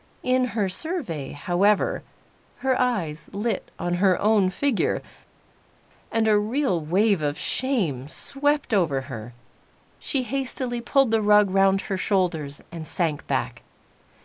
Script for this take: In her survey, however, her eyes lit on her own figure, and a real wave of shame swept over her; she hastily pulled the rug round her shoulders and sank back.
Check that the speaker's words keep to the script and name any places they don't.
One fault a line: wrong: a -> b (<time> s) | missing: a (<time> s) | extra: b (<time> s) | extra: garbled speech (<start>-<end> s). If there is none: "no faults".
no faults